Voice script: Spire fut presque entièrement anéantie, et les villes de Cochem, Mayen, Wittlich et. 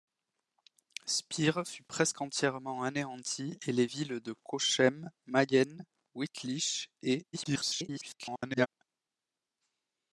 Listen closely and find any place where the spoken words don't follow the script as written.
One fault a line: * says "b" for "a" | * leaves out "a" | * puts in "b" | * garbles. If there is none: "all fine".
* garbles